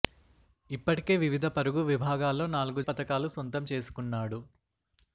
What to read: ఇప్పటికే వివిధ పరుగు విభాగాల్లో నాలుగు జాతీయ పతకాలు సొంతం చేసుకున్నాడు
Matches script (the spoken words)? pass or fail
fail